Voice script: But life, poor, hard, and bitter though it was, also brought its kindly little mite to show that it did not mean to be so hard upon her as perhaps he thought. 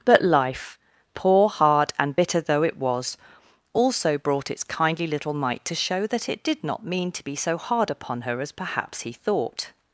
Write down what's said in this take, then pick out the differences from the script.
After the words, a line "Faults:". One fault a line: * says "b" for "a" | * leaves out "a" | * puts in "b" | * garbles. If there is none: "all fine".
But life, poor, hard, and bitter though it was, also brought its kindly little mite to show that it did not mean to be so hard upon her as perhaps he thought.
Faults:
all fine